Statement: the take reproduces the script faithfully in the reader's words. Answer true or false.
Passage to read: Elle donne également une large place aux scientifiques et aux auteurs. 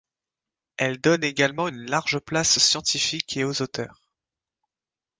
true